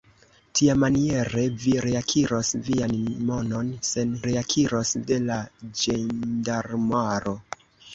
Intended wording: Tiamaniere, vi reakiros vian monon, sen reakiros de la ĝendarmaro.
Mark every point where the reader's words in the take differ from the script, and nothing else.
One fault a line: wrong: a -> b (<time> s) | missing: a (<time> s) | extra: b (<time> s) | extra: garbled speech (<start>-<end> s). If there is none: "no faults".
no faults